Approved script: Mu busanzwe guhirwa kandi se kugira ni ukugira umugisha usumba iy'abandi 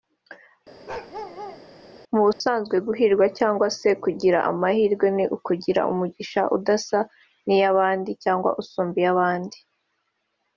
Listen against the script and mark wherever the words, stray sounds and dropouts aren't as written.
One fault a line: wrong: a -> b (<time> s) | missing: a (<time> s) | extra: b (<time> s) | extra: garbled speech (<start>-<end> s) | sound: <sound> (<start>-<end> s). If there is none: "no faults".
sound: bark (0.9-1.6 s)
sound: dropout (2.3-2.4 s)
wrong: kandi -> cyangwa (3.4 s)
extra: amahirwe (4.5 s)
extra: udasa n'iyabandi cyangwa (6.5 s)